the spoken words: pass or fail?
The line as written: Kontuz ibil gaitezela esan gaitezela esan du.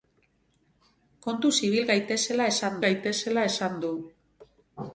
pass